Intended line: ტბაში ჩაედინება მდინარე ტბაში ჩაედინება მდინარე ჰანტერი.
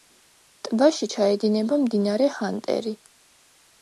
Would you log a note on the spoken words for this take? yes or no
yes